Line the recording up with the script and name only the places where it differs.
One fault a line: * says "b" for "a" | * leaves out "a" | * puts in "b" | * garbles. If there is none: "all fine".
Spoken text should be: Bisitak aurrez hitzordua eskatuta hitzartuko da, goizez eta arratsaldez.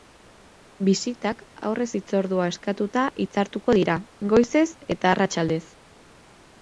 * says "dira" for "da"